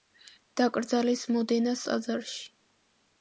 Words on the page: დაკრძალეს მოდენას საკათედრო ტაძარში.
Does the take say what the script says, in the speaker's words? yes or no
no